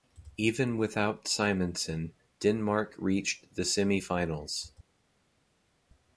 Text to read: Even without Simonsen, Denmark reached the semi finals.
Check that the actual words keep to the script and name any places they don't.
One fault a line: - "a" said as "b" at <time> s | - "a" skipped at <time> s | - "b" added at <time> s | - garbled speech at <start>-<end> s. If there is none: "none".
none